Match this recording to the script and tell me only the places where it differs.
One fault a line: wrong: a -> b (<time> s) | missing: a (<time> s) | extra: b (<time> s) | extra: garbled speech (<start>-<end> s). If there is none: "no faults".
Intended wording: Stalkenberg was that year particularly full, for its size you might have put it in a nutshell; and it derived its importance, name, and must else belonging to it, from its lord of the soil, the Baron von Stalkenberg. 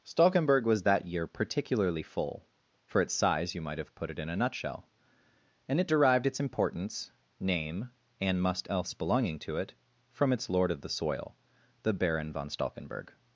no faults